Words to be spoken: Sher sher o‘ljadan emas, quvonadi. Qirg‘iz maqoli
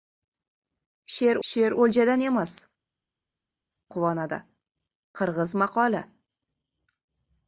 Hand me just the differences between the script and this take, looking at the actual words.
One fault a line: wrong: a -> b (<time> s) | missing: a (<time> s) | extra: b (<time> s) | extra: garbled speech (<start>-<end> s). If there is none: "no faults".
no faults